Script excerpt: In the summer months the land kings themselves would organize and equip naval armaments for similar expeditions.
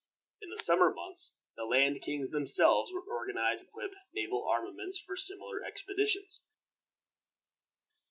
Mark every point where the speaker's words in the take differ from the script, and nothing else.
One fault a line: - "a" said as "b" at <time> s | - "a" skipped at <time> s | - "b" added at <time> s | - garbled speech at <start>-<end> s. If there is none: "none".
- "and" skipped at 3.6 s